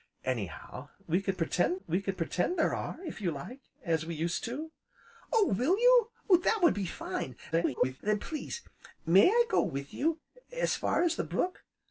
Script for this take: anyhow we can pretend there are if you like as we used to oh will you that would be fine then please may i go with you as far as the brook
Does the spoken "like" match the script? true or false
true